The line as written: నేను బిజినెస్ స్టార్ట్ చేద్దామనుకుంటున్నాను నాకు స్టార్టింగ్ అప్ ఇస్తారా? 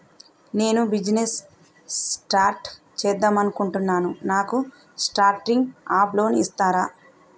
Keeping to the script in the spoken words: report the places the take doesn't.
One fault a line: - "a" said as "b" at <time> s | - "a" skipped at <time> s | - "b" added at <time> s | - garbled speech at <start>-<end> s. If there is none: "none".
- "లోన్" added at 6.1 s